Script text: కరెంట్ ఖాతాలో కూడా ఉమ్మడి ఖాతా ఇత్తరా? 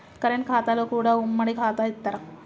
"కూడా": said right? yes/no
yes